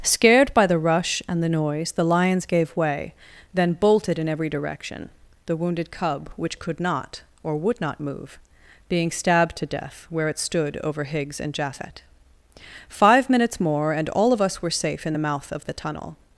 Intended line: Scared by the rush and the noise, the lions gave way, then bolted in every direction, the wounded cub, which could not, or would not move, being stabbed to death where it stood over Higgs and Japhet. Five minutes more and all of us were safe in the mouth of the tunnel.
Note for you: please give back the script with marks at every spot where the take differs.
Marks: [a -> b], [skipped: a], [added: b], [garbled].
Scared by the rush and the noise, the lions gave way, then bolted in every direction, the wounded cub, which could not, or would not move, being stabbed to death where it stood over Higgs and Japhet. Five minutes more and all of us were safe in the mouth of the tunnel.